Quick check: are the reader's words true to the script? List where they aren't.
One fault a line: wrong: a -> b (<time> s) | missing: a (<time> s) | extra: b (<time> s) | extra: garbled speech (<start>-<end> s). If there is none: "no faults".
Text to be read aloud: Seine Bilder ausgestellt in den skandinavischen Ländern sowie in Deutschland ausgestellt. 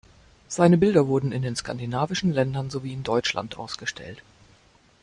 wrong: ausgestellt -> wurden (1.1 s)